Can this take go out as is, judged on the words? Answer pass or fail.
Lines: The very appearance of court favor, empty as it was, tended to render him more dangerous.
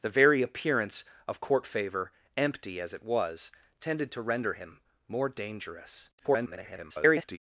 fail